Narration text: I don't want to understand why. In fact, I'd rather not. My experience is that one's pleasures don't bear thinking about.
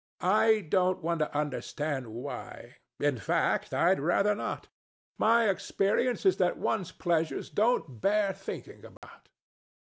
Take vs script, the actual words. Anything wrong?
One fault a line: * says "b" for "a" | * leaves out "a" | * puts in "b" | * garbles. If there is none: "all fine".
all fine